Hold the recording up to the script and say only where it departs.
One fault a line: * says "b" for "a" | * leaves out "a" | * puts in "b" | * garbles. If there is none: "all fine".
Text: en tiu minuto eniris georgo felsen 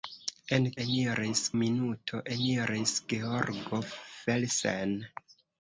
* says "eniris" for "tiu"